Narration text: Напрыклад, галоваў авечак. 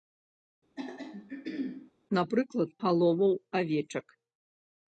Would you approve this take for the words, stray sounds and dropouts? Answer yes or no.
no